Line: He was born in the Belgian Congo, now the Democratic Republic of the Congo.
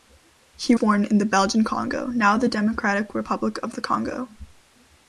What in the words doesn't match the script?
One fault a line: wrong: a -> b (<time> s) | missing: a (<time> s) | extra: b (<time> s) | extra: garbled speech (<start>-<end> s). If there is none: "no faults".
missing: was (0.8 s)